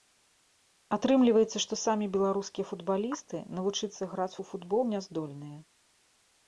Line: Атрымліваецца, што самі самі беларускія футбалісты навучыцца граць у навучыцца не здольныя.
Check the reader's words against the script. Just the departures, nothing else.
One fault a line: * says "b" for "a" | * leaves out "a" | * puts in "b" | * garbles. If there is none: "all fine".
* leaves out "самі"
* says "футбол" for "навучыцца"